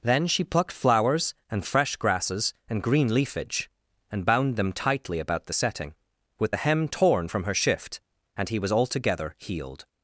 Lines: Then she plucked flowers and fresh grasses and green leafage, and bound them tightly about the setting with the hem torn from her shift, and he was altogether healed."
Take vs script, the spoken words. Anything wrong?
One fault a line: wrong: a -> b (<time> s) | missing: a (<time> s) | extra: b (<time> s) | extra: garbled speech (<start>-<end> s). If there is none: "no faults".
no faults